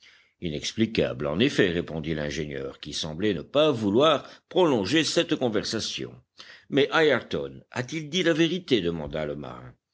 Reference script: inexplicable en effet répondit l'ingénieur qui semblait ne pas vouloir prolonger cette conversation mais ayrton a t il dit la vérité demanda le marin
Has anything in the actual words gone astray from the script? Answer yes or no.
no